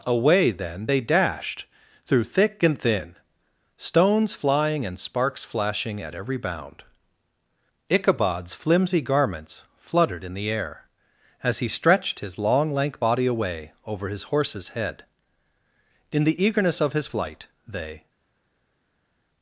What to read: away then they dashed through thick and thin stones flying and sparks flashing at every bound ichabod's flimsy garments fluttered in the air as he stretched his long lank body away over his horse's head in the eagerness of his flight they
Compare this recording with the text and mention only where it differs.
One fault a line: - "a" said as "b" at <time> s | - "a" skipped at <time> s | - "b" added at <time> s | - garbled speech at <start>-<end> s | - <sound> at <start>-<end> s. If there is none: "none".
none